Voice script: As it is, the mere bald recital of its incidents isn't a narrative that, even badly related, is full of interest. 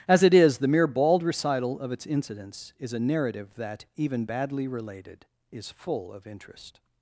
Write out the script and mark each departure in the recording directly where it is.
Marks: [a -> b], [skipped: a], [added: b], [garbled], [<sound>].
As it is, the mere bald recital of its incidents [isn't -> is] a narrative that, even badly related, is full of interest.